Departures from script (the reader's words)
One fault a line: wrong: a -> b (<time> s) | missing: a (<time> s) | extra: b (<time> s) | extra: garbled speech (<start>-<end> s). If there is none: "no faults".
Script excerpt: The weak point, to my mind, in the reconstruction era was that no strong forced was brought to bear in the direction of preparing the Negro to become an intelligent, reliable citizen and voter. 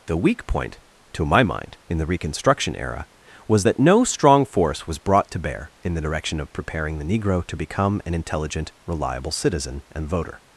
wrong: forced -> force (4.4 s)